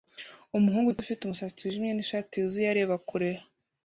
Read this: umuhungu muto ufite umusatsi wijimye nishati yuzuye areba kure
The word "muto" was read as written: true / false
true